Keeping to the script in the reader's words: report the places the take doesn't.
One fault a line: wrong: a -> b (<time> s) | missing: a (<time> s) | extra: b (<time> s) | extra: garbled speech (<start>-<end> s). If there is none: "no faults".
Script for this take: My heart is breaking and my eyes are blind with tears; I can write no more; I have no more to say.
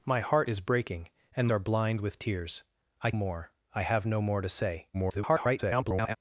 missing: my eyes (1.5 s)
missing: can write no (3.1 s)
extra: garbled speech (4.9-6.2 s)